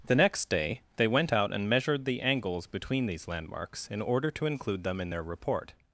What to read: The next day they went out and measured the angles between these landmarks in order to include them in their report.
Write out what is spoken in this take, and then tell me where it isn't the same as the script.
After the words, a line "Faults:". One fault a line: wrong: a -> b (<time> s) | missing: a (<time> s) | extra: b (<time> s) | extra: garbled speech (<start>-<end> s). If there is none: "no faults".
The next day they went out and measured the angles between these landmarks in order to include them in their report.
Faults:
no faults